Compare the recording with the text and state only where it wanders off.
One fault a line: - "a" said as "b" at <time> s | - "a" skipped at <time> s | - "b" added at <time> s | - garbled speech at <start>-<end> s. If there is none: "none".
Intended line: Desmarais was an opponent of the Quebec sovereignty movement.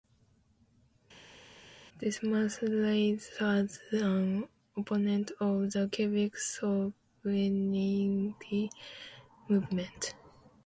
none